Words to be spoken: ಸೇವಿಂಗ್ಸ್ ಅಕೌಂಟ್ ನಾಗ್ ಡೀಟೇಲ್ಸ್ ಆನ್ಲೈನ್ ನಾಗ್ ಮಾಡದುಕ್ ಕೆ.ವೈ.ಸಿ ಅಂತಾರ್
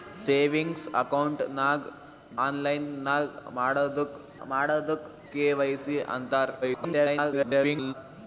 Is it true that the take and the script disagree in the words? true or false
true